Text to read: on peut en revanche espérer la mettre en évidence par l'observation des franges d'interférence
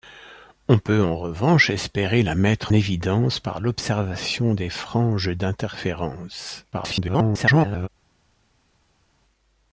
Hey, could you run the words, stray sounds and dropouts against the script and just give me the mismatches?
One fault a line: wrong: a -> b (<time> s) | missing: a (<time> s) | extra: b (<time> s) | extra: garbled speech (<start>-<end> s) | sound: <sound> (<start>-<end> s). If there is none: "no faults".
missing: en (2.7 s)
extra: garbled speech (6.7-7.9 s)